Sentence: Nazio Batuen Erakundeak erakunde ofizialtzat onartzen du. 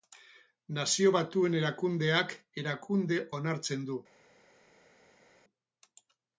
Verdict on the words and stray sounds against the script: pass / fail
fail